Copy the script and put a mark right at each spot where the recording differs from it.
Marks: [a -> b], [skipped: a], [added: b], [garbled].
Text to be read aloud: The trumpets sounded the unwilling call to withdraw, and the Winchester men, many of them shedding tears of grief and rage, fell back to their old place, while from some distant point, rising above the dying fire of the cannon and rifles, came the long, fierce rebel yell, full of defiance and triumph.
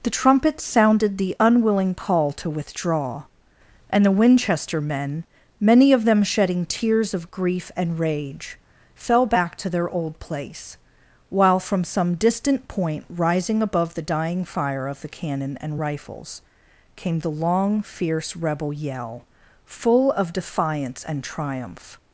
The trumpets sounded the unwilling call to withdraw, and the Winchester men, many of them shedding tears of grief and rage, fell back to their old place, while from some distant point, rising above the dying fire of the cannon and rifles, came the long, fierce rebel yell, full of defiance and triumph.